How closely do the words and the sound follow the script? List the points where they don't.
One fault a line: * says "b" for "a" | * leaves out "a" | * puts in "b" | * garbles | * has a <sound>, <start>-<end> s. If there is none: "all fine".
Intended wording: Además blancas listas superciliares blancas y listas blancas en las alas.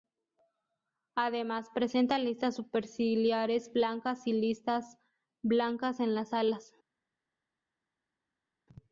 * says "presenta" for "blancas"